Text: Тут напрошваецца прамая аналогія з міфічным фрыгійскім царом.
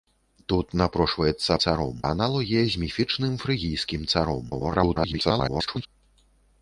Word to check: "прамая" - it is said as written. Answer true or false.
false